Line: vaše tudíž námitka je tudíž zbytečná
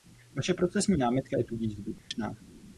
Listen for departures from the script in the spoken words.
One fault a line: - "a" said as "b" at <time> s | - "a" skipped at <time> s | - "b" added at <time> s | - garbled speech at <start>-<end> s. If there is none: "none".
- "tudíž" said as "procesní" at 0.5 s